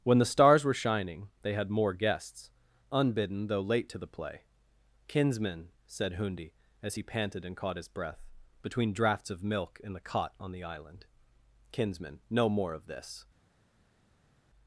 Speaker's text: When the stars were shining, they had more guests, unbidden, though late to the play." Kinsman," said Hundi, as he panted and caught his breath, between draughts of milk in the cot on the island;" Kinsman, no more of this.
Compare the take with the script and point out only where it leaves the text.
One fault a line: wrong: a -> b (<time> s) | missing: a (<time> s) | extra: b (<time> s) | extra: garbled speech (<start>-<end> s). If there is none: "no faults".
no faults